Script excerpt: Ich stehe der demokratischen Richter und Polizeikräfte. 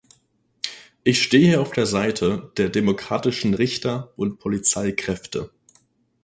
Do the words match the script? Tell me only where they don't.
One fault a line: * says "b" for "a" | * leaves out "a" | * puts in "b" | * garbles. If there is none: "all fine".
* puts in "auf der Seite"